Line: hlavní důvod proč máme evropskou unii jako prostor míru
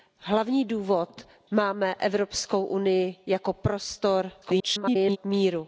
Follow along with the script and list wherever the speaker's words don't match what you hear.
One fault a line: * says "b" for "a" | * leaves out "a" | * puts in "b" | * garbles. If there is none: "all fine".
* leaves out "proč"
* garbles